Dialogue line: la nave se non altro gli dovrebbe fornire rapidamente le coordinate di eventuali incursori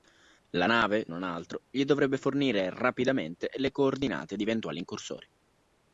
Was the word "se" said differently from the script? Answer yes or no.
yes